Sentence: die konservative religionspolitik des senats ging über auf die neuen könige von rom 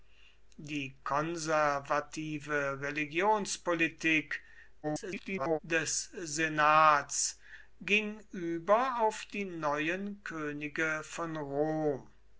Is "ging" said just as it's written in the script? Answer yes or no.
yes